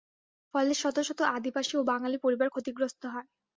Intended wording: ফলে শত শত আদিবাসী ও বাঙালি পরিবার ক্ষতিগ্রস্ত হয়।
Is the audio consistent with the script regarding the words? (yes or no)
yes